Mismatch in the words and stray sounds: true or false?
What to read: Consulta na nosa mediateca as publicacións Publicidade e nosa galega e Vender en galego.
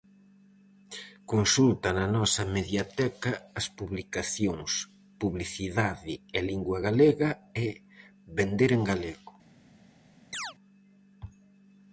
true